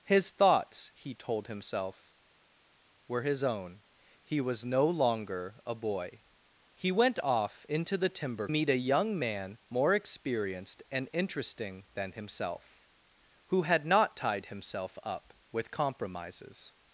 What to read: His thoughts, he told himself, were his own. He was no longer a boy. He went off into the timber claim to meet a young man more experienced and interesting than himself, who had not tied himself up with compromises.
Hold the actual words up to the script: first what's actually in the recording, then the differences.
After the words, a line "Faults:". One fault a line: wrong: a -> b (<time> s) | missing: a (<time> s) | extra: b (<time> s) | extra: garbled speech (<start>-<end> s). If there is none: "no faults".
His thoughts, he told himself, were his own. He was no longer a boy. He went off into the timber meet a young man more experienced and interesting than himself, who had not tied himself up with compromises.
Faults:
missing: claim to (8.5 s)